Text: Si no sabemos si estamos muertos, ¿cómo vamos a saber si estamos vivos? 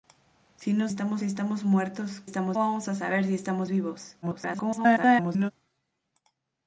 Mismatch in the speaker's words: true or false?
true